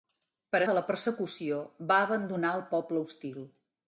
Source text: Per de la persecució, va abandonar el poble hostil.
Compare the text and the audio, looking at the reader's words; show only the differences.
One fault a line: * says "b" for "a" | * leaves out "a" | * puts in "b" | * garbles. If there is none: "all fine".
all fine